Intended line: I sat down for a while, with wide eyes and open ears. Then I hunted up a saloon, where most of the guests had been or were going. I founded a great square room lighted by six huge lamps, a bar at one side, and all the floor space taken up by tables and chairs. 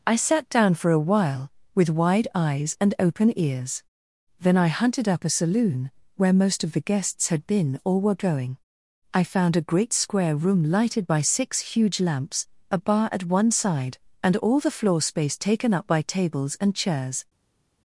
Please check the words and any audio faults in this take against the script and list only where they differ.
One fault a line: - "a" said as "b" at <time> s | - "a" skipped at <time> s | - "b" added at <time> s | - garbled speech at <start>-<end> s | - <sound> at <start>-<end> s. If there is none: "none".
- "founded" said as "found" at 9.2 s